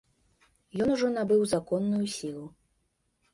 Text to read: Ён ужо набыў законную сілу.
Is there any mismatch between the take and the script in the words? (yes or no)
no